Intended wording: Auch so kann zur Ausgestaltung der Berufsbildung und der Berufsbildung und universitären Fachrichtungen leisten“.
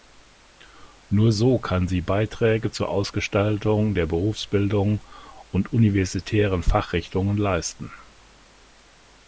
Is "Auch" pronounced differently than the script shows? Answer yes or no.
yes